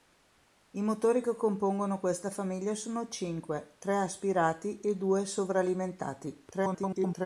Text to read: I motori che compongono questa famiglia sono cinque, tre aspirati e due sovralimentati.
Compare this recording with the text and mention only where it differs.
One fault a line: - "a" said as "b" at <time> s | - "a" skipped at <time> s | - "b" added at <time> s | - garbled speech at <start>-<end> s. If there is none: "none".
- garbled speech at 6.5-7.3 s